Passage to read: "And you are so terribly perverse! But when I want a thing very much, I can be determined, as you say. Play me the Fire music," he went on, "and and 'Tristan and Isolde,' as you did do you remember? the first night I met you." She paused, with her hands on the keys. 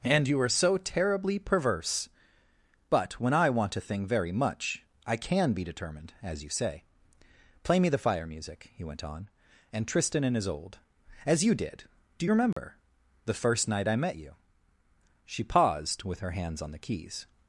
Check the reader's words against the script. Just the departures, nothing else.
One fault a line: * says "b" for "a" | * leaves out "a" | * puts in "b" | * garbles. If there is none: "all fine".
* leaves out "and"